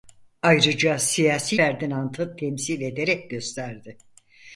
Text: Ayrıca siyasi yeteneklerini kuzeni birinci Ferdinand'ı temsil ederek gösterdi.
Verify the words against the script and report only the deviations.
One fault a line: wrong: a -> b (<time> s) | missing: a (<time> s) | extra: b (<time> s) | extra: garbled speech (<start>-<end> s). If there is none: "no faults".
missing: yeteneklerini kuzeni birinci (1.6 s)